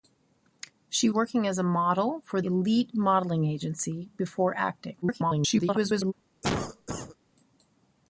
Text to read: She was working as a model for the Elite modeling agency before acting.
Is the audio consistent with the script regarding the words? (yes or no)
no